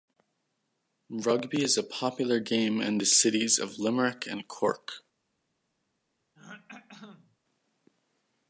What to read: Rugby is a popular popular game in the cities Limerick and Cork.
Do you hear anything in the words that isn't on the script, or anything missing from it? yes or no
yes